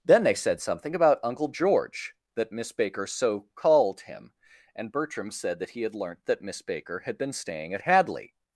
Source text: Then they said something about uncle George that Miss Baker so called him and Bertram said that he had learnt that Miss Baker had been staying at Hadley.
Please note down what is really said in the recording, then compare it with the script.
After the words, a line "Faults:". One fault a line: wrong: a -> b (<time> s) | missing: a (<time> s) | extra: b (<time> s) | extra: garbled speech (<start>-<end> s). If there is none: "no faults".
Then they said something about uncle George that Miss Baker so called him and Bertram said that he had learnt that Miss Baker had been staying at Hadley.
Faults:
no faults